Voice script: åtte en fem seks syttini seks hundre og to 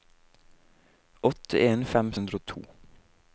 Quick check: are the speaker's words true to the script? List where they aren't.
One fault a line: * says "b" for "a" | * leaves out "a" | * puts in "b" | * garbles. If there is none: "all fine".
* leaves out "seks syttini seks"